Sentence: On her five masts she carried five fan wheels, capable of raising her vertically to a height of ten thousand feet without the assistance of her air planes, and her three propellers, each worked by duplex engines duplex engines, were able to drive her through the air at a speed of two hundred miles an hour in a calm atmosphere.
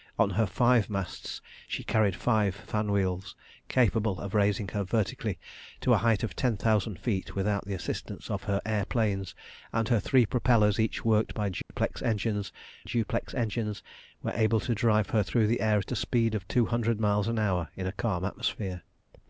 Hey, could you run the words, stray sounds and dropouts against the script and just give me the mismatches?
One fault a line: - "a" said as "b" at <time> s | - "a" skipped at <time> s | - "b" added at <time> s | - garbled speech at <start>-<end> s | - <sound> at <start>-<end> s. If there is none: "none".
- dropout at 11.6-11.7 s